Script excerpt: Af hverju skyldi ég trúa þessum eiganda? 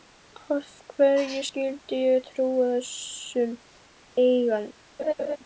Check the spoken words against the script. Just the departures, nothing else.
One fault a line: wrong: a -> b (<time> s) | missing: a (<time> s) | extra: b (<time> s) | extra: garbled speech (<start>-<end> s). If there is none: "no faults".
no faults